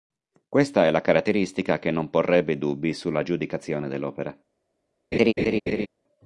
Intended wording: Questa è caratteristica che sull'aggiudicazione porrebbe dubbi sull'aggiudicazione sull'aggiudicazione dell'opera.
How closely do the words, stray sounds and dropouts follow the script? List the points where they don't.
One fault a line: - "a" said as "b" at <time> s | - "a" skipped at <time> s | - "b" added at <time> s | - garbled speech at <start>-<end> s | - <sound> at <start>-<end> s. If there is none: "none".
- "la" added at 0.9 s
- "sull'aggiudicazione" said as "non" at 1.9 s
- "sull'aggiudicazione" skipped at 3.9 s
- laugh at 5.1-5.9 s